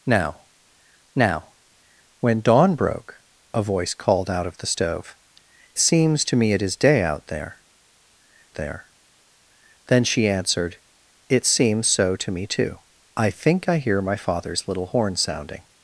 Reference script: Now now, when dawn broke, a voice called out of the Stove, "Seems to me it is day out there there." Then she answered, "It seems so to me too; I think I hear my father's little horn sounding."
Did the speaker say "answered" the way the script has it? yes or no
yes